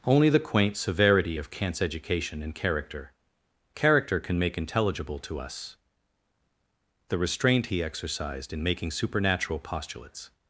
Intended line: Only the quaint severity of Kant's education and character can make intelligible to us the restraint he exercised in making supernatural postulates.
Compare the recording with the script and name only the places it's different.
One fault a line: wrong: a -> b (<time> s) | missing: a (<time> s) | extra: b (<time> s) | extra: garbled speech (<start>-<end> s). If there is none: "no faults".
extra: character (3.7 s)